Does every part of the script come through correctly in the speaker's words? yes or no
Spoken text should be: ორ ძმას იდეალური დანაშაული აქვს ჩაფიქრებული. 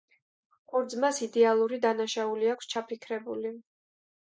yes